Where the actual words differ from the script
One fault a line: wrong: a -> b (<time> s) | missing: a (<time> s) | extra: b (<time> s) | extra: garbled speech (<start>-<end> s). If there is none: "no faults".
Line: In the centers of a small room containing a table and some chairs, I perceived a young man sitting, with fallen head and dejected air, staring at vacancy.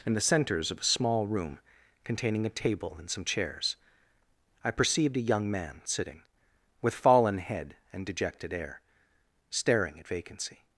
no faults